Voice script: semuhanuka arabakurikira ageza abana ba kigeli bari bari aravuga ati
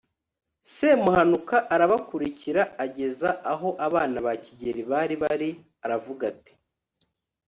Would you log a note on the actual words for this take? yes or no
yes